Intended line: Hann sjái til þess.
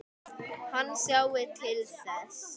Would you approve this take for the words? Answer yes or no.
yes